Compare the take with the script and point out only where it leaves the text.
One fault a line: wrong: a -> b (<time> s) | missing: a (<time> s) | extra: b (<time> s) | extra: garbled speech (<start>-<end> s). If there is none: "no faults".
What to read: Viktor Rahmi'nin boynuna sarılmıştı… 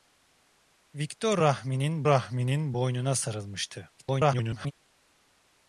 extra: Rahmi'nin (2.0 s)
extra: garbled speech (4.0-4.7 s)